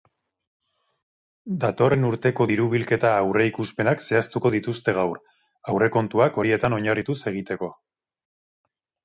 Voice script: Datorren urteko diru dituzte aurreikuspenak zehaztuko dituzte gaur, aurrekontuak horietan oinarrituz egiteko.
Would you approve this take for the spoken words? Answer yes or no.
no